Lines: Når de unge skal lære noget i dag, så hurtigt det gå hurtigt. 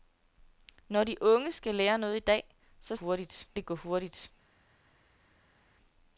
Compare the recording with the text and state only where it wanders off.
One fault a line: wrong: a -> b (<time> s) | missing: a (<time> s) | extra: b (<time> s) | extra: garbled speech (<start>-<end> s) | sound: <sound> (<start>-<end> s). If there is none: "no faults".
no faults